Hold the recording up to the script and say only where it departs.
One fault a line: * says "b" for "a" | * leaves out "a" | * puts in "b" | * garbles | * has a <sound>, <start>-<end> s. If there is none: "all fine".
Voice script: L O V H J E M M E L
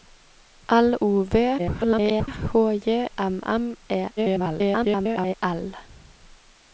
* garbles
* leaves out "E"
* garbles